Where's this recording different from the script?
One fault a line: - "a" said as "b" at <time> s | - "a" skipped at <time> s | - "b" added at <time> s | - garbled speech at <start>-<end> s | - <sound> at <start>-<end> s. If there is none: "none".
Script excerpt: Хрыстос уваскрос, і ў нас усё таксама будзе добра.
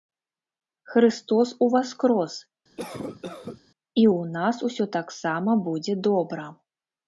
- cough at 2.8-3.6 s